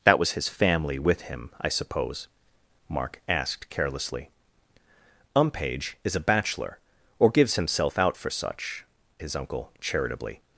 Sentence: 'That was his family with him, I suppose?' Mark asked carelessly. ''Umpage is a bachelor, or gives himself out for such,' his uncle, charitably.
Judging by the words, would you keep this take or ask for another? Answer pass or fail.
pass